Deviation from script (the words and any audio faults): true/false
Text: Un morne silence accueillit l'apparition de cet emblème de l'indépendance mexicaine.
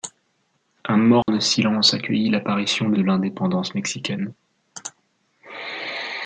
true